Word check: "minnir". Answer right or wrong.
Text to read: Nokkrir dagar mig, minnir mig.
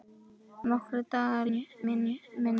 right